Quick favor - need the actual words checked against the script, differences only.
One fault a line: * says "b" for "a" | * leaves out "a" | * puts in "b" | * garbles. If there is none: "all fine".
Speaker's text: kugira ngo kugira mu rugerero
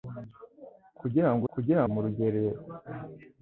all fine